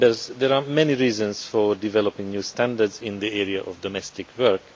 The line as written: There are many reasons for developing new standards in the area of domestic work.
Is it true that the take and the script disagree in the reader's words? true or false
false